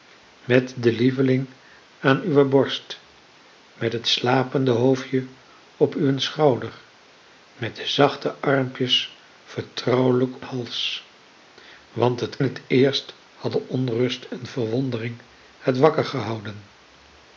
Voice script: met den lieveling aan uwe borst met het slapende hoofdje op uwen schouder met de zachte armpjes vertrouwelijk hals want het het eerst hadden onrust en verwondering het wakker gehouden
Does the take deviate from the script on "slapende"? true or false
false